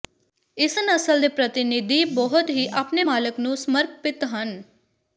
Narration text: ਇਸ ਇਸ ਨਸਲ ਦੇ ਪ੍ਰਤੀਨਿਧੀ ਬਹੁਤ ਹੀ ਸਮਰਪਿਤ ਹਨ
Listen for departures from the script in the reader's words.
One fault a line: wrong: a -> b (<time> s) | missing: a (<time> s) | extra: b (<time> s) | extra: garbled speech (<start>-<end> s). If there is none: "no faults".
missing: ਇਸ (0.8 s)
extra: ਆਪਣੇ ਮਾਲਕ ਨੂੰ (2.8 s)